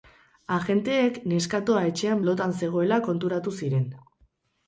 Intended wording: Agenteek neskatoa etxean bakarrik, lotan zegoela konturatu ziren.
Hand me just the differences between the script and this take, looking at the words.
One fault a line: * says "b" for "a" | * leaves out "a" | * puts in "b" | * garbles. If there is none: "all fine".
* leaves out "bakarrik"